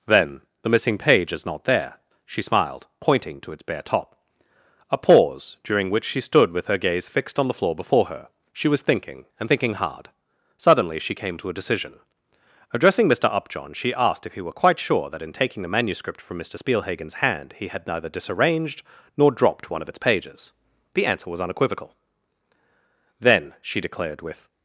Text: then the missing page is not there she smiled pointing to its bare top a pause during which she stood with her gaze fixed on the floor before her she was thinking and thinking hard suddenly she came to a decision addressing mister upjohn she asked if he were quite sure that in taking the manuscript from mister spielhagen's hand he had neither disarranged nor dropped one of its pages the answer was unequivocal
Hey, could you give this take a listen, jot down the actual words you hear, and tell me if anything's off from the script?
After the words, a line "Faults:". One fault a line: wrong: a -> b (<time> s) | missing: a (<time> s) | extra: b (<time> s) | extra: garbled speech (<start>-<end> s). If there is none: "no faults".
then the missing page is not there she smiled pointing to its bare top a pause during which she stood with her gaze fixed on the floor before her she was thinking and thinking hard suddenly she came to a decision addressing mister upjohn she asked if he were quite sure that in taking the manuscript from mister spielhagen's hand he had neither disarranged nor dropped one of its pages the answer was unequivocal then she declared with
Faults:
extra: then she declared with (23.2 s)